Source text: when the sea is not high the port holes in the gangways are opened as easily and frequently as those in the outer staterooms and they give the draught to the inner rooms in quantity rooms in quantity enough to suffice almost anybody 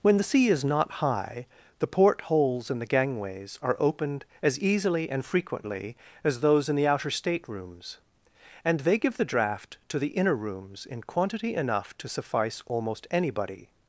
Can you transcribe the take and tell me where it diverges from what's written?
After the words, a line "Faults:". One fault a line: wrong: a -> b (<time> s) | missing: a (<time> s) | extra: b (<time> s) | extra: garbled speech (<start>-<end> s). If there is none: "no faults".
when the sea is not high the port holes in the gangways are opened as easily and frequently as those in the outer staterooms and they give the draught to the inner rooms in quantity enough to suffice almost anybody
Faults:
missing: rooms in quantity (11.6 s)